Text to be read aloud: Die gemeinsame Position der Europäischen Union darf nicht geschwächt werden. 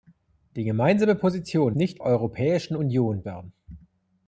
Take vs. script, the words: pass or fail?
fail